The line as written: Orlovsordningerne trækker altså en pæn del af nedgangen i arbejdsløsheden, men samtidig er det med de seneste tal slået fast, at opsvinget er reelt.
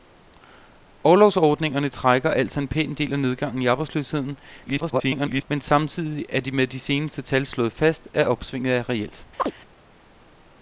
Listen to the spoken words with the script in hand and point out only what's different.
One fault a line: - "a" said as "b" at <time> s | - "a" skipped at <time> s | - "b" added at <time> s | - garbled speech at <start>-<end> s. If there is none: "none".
- garbled speech at 4.7-5.4 s